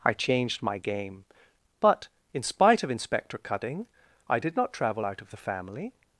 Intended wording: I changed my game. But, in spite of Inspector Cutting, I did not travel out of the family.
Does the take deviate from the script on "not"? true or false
false